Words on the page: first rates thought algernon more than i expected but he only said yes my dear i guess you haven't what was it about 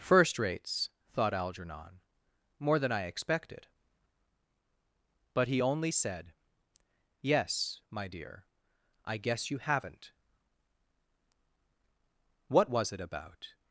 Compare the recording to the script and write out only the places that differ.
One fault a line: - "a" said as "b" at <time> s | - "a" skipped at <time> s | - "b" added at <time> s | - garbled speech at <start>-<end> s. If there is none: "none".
none